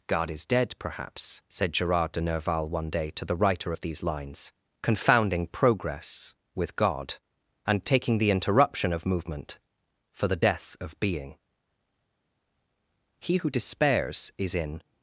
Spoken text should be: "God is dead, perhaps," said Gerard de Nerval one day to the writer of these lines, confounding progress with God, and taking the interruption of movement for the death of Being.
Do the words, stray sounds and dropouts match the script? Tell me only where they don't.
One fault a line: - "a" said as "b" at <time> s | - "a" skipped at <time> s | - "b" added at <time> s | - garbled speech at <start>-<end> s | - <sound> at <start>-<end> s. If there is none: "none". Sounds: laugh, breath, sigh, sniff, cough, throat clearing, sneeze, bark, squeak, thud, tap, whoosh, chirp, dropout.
- "He who despairs is in" added at 13.2 s